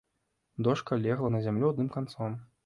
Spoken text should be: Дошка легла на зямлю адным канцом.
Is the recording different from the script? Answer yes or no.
no